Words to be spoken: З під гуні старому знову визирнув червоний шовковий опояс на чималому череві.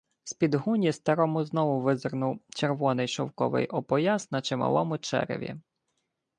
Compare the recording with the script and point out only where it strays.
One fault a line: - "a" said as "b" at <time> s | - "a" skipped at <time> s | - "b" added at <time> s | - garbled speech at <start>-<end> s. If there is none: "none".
none